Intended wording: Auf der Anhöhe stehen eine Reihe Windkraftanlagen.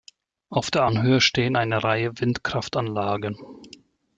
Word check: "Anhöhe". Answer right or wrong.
right